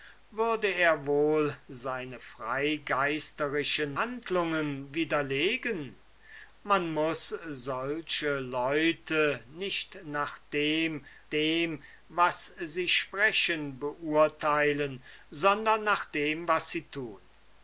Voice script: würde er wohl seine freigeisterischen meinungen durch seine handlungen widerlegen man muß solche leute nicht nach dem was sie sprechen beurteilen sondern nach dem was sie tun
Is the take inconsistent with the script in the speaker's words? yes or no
yes